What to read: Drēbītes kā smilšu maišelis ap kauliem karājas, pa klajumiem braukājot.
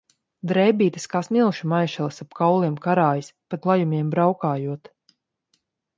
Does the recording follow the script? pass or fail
pass